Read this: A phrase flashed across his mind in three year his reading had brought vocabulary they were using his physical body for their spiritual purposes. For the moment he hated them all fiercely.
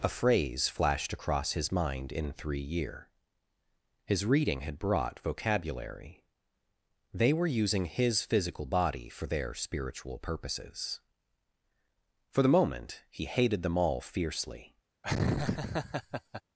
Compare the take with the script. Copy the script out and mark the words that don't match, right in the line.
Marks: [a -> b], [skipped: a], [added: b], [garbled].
A phrase flashed across his mind in three year his reading had brought vocabulary they were using his physical body for their spiritual purposes. For the moment he hated them all fiercely.